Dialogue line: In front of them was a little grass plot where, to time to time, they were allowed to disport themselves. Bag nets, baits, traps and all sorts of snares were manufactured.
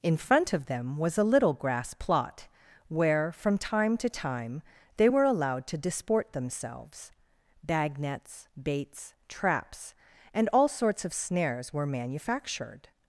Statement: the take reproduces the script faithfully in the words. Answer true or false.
false